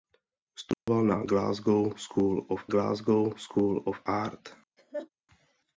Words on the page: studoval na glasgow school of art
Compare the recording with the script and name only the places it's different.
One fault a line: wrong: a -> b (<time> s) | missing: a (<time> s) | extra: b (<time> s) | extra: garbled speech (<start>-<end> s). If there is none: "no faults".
extra: glasgow school of (2.7 s)